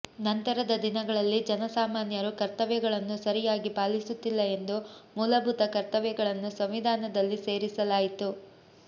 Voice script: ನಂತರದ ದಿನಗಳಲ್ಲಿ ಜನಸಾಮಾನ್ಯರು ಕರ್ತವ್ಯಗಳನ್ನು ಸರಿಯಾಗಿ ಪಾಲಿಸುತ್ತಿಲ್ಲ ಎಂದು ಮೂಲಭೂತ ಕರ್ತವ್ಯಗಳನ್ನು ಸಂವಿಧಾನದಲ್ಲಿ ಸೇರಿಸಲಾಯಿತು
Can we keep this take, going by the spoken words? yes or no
yes